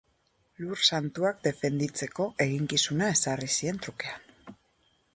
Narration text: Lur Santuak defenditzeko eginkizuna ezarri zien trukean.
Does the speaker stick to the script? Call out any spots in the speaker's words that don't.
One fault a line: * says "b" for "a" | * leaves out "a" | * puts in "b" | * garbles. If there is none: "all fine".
all fine